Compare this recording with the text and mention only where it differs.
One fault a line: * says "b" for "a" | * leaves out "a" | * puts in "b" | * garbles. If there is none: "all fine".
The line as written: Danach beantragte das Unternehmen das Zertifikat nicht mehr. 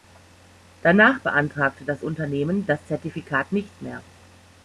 all fine